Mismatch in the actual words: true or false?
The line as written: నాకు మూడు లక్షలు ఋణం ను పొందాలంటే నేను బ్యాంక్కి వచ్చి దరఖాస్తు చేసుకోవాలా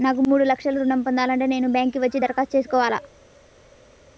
false